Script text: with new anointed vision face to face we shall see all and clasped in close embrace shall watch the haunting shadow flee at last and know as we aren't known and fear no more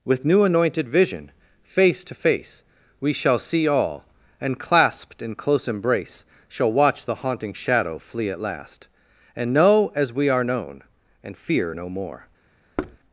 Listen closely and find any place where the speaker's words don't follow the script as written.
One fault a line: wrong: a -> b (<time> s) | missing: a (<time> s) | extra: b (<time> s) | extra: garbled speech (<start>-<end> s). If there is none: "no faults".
wrong: aren't -> are (10.3 s)